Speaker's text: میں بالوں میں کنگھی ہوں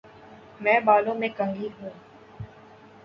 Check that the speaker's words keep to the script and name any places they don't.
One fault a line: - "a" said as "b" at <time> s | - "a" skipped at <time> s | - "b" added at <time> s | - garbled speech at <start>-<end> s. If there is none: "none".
none